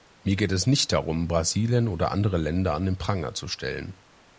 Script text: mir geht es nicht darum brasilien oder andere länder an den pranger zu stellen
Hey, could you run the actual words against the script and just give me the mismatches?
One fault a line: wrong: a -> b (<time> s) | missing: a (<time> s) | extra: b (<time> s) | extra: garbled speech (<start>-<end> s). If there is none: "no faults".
no faults